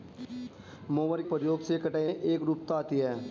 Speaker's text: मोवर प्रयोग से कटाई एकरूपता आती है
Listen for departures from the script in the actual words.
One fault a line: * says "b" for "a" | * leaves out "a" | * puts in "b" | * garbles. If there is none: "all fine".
all fine